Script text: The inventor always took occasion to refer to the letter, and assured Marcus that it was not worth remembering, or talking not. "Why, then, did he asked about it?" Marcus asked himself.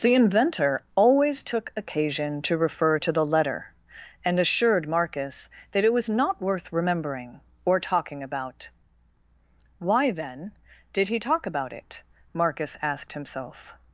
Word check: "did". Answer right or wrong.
right